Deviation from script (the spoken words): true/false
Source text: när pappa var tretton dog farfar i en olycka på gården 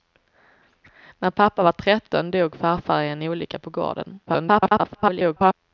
true